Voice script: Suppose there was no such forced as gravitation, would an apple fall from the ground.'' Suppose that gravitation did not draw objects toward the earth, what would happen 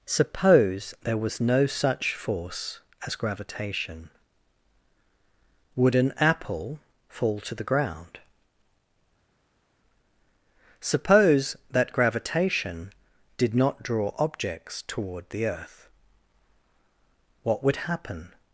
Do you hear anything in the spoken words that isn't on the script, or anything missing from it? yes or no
yes